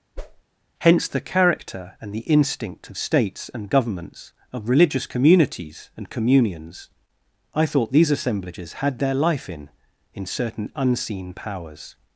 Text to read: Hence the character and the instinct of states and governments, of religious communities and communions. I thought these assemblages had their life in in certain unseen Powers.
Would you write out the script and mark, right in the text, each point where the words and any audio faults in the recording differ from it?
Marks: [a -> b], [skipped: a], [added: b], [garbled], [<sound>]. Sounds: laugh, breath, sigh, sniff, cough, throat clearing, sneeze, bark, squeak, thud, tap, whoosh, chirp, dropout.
[whoosh] Hence the character and the instinct of states and governments, of religious communities and communions. I thought these assemblages had their life in in certain unseen Powers.